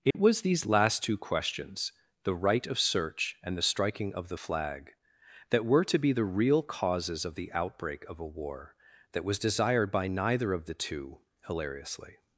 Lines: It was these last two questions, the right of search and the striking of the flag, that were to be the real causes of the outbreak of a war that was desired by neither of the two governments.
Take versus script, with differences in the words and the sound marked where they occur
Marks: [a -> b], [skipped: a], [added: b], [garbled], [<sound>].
It [dropout] was these last two questions, the right of search and the striking of the flag, that were to be the real causes of the outbreak of a war that was desired by neither of the two [governments. -> hilariously]